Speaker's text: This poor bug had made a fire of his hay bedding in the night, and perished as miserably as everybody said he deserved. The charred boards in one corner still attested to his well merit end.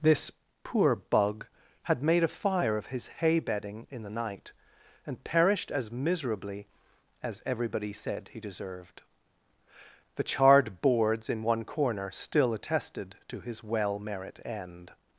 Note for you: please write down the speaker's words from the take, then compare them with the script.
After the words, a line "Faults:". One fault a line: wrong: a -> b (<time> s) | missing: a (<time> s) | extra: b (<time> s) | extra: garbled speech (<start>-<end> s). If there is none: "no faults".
This poor bug had made a fire of his hay bedding in the night, and perished as miserably as everybody said he deserved. The charred boards in one corner still attested to his well merit end.
Faults:
no faults